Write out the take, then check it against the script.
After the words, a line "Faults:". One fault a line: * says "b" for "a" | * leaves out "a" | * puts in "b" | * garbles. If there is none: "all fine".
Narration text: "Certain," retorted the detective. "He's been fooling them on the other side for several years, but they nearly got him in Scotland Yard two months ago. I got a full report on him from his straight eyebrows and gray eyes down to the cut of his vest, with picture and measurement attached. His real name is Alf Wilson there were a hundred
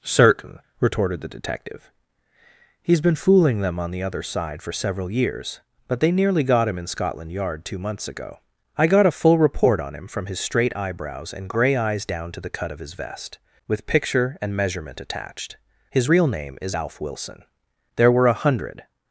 "Certain," retorted the detective. "He's been fooling them on the other side for several years, but they nearly got him in Scotland Yard two months ago. I got a full report on him from his straight eyebrows and gray eyes down to the cut of his vest, with picture and measurement attached. His real name is Alf Wilson there were a hundred
Faults:
all fine